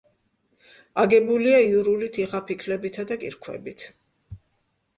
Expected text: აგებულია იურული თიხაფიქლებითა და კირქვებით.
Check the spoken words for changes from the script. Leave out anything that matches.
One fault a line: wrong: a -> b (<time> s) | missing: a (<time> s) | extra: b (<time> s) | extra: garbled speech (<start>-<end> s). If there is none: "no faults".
no faults